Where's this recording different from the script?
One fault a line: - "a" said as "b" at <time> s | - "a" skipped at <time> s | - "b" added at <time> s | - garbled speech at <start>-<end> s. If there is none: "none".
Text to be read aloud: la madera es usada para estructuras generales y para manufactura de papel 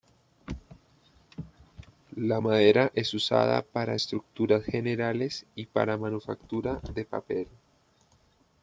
none